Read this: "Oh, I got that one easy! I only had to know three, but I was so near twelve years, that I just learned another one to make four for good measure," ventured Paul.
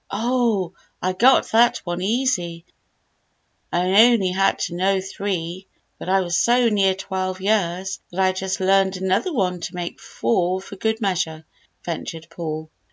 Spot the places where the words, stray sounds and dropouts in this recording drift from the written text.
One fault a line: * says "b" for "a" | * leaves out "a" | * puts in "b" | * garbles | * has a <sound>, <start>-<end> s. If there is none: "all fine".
all fine